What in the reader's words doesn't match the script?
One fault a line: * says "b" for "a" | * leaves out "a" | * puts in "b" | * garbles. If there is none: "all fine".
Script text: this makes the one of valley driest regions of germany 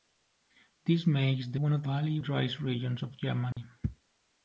all fine